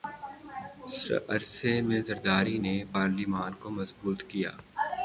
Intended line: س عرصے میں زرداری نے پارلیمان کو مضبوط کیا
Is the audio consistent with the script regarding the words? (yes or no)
yes